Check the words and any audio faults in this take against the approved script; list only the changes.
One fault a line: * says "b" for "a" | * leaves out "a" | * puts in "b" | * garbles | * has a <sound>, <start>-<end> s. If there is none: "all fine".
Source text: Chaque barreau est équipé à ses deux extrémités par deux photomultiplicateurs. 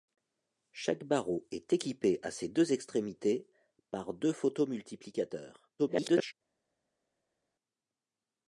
* garbles